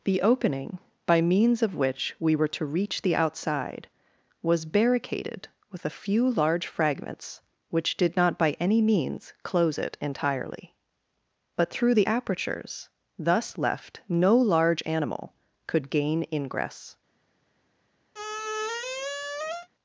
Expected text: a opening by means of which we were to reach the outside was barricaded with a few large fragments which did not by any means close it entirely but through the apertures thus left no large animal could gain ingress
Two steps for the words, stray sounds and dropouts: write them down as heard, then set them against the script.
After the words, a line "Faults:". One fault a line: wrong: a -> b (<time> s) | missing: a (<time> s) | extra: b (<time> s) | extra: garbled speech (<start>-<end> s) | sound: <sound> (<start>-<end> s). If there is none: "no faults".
the opening by means of which we were to reach the outside was barricaded with a few large fragments which did not by any means close it entirely but through the apertures thus left no large animal could gain ingress
Faults:
wrong: a -> the (0.0 s)
sound: squeak (18.1-19.7 s)